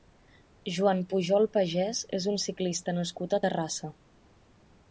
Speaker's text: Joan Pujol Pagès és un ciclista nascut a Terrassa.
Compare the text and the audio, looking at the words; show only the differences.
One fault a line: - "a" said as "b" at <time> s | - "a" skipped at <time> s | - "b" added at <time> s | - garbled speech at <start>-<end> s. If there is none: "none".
none